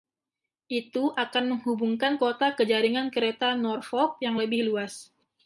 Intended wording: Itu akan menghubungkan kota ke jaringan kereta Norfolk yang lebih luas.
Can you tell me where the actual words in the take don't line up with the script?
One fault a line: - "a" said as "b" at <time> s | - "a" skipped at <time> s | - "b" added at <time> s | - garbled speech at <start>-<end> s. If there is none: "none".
none